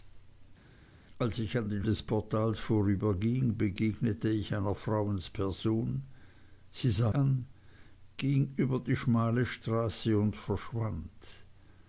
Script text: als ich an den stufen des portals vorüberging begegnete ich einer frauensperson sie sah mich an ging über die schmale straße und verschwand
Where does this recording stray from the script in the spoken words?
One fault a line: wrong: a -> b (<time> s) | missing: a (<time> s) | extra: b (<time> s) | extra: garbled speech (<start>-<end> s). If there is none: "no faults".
missing: stufen (1.8 s)
missing: mich (7.1 s)